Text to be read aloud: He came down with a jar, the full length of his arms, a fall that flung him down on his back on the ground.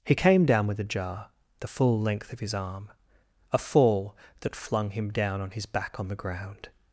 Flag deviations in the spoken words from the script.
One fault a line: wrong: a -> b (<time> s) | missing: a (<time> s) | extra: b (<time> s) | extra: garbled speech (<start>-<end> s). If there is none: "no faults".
wrong: arms -> arm (2.5 s)